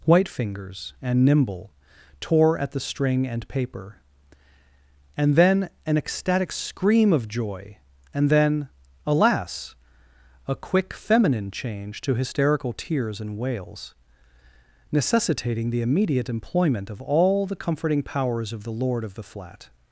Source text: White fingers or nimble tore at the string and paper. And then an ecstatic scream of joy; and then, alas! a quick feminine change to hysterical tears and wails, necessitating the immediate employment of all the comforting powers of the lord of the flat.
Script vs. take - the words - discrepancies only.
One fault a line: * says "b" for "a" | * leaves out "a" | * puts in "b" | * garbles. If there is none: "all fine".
* says "and" for "or"